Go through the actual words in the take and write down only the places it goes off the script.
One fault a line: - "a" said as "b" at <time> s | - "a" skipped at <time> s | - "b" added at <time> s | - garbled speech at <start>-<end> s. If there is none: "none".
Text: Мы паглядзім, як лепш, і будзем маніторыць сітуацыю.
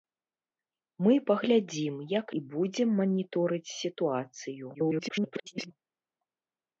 - "лепш" skipped at 2.3 s
- garbled speech at 4.7-5.7 s